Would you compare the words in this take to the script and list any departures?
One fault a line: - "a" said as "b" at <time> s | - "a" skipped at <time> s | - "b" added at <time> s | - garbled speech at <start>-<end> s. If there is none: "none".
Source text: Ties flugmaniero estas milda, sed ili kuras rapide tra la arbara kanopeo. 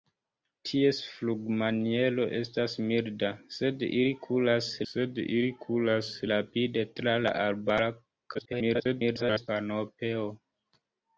- "sed ili kuras" added at 4.9 s
- garbled speech at 8.3-9.5 s